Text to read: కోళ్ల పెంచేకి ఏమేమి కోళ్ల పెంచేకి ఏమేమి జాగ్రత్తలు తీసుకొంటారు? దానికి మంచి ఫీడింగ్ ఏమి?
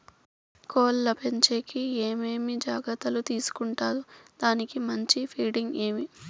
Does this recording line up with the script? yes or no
no